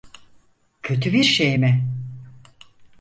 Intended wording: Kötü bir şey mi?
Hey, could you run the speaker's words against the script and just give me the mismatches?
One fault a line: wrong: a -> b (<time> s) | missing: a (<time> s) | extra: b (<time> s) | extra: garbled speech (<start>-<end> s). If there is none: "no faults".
no faults